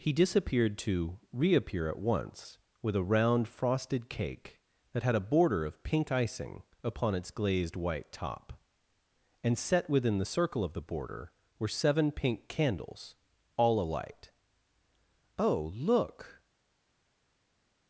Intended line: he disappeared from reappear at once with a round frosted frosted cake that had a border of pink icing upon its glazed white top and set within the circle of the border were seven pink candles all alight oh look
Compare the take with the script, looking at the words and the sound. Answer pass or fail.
fail